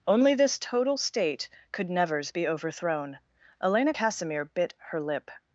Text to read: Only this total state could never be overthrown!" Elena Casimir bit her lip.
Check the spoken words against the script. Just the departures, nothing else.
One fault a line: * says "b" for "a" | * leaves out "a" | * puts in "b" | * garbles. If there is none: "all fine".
* says "nevers" for "never"